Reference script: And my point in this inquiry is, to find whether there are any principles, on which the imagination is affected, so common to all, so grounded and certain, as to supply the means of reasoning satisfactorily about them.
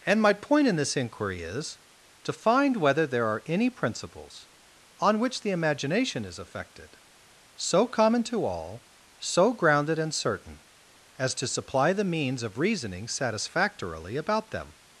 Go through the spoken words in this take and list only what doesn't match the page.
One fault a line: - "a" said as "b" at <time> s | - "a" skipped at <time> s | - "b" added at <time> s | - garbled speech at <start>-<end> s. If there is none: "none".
none